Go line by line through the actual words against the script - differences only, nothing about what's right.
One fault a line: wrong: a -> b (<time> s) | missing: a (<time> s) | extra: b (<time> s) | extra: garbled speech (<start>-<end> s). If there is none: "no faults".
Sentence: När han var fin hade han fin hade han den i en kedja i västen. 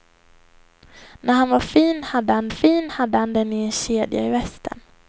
no faults